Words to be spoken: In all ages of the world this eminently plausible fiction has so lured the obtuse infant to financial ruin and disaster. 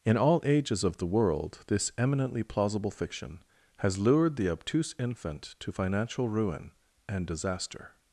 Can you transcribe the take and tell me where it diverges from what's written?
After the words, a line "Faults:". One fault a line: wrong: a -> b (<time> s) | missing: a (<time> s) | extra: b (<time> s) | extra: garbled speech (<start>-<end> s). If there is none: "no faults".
In all ages of the world this eminently plausible fiction has lured the obtuse infant to financial ruin and disaster.
Faults:
missing: so (4.0 s)